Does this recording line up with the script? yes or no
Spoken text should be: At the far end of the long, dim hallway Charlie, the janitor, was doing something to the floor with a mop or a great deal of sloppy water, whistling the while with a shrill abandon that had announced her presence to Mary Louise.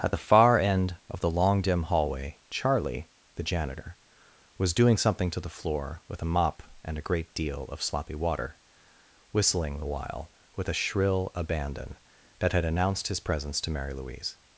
no